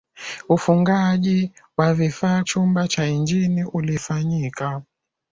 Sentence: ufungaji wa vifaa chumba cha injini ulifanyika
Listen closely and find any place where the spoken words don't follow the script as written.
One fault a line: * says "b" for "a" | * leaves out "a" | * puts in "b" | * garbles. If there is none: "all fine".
all fine